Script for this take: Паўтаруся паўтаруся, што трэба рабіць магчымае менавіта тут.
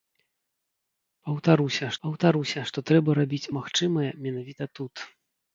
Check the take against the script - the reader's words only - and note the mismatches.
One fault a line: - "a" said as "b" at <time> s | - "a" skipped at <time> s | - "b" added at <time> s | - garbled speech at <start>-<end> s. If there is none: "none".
none